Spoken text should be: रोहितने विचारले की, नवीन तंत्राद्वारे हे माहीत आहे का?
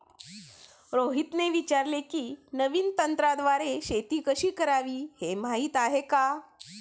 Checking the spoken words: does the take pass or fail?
fail